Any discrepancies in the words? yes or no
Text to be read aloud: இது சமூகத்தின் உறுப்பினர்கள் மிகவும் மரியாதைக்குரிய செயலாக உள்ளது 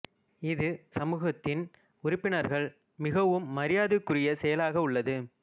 no